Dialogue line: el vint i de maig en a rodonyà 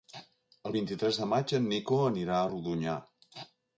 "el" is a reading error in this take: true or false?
false